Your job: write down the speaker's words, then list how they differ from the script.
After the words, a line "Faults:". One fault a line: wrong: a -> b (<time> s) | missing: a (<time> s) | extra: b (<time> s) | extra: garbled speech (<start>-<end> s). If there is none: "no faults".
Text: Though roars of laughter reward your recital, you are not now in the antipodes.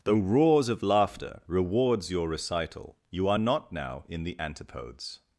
Though roars of laughter rewards your recital, you are not now in the antipodes.
Faults:
wrong: reward -> rewards (1.4 s)